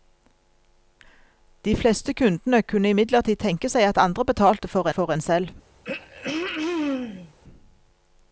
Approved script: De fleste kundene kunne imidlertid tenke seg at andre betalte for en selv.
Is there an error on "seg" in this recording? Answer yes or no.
no